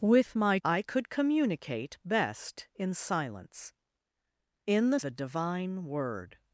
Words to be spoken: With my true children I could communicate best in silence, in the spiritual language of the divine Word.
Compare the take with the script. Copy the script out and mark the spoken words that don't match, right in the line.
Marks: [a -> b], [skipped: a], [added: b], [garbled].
With my [skipped: true children] I could communicate best in silence, in the [skipped: spiritual language of] the divine Word.